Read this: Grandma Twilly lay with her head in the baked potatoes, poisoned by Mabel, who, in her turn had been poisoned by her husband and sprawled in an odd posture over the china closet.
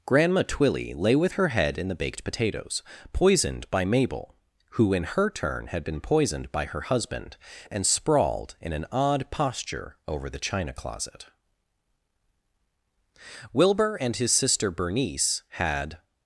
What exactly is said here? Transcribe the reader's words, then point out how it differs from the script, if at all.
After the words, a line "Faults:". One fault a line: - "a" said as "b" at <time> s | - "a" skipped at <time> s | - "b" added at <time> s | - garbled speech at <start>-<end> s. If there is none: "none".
Grandma Twilly lay with her head in the baked potatoes, poisoned by Mabel, who, in her turn had been poisoned by her husband and sprawled in an odd posture over the china closet. Wilbur and his sister Bernice had
Faults:
- "Wilbur and his sister Bernice had" added at 13.5 s